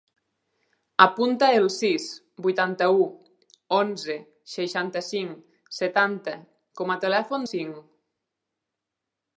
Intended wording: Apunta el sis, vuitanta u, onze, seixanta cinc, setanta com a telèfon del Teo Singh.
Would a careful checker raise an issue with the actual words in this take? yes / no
yes